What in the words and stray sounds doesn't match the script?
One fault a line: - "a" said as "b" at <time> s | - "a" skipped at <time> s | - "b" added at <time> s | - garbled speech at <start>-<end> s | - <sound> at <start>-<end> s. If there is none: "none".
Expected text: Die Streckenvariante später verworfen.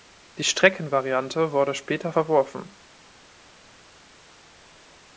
- "wurde" added at 1.5 s